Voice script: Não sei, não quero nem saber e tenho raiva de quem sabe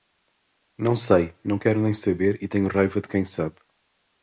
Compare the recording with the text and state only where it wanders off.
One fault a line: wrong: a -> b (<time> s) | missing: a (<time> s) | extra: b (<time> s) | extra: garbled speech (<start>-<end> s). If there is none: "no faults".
no faults